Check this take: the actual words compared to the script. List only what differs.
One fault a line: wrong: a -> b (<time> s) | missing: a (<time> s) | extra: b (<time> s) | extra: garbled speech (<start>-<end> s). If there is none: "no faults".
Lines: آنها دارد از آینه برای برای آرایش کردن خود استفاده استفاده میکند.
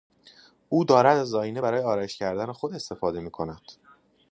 wrong: آنها -> او (0.7 s)
missing: برای (1.8 s)
missing: استفاده (3.2 s)